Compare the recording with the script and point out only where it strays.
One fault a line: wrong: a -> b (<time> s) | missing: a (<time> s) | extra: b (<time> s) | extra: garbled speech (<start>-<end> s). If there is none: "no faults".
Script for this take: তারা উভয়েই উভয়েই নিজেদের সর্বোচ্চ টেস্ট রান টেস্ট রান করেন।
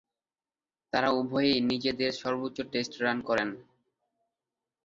missing: উভয়েই (1.6 s)
missing: টেস্ট রান (3.2 s)